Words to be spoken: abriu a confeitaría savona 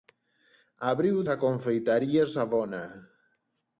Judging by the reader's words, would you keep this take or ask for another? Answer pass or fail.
pass